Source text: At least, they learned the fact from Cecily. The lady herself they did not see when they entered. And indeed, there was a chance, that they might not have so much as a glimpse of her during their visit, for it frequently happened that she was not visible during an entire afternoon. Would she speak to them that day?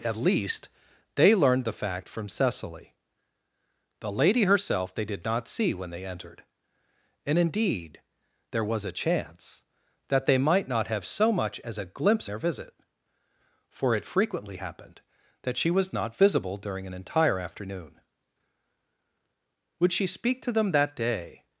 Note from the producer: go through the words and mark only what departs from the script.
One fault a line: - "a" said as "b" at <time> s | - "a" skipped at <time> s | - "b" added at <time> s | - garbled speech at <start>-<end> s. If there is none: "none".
- "of her during" skipped at 12.3 s